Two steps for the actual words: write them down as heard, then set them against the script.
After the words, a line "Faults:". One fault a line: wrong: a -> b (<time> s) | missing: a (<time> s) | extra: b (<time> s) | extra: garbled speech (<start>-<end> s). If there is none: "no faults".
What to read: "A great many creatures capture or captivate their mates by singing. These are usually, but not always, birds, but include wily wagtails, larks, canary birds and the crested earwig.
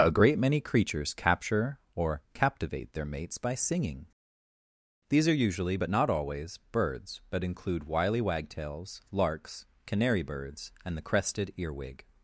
"A great many creatures capture or captivate their mates by singing. These are usually, but not always, birds, but include wily wagtails, larks, canary birds and the crested earwig.
Faults:
no faults